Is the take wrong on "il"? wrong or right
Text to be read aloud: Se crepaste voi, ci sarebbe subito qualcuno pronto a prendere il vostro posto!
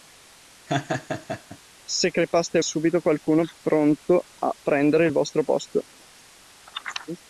right